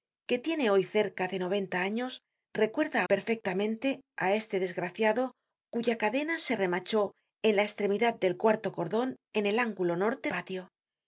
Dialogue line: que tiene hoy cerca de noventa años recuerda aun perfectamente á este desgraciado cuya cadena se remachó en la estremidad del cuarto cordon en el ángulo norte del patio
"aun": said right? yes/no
no